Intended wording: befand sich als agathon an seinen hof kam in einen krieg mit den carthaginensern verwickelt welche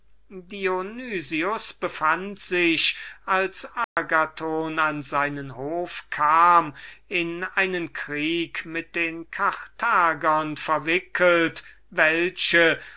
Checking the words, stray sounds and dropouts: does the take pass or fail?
fail